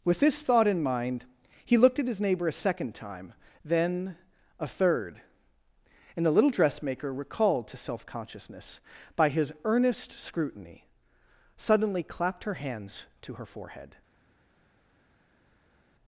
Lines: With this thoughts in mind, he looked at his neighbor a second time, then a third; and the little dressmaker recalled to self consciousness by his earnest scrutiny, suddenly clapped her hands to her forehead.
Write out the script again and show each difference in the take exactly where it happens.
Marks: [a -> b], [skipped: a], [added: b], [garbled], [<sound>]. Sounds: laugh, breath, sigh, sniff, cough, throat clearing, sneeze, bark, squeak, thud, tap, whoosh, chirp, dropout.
With this [thoughts -> thought] in mind, he looked at his neighbor a second time, then a third; and the little dressmaker recalled to self consciousness by his earnest scrutiny, suddenly clapped her hands to her forehead.